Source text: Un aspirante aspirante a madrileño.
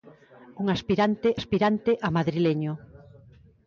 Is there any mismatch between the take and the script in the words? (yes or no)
no